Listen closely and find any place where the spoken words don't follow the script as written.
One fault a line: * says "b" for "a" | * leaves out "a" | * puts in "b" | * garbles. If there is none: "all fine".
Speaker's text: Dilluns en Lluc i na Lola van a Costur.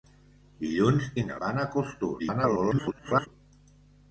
* leaves out "en Lluc"
* leaves out "Lola"
* garbles